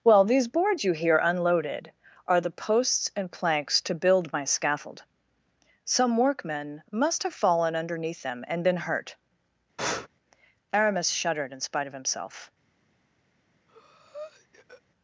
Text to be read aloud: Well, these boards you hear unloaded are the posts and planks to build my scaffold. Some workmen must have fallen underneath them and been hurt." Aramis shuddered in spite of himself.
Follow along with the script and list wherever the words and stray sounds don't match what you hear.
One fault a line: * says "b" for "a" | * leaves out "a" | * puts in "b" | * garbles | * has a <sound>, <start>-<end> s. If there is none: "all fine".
* has a breath, 9.8-10.1 s
* has a breath, 13.7-14.8 s